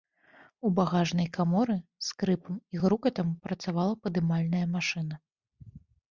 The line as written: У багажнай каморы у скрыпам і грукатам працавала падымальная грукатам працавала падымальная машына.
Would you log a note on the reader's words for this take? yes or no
yes